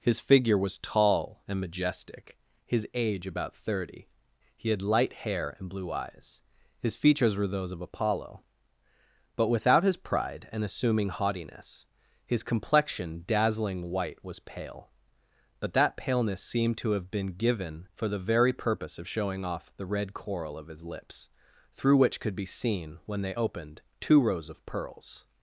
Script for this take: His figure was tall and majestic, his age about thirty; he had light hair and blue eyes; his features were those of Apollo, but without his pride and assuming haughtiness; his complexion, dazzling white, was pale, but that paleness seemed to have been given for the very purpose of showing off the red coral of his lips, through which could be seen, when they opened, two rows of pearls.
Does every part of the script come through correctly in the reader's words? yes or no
yes